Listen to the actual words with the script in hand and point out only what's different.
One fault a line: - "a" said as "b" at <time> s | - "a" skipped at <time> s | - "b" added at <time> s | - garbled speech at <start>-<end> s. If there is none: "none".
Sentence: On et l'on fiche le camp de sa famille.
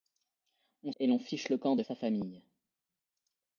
none